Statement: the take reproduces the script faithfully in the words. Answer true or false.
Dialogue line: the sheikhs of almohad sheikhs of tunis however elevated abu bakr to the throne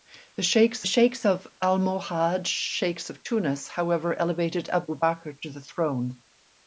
false